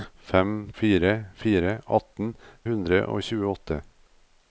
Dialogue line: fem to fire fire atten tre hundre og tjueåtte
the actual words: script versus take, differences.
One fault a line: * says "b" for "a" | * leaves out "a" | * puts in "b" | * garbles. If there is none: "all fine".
* leaves out "to"
* leaves out "tre"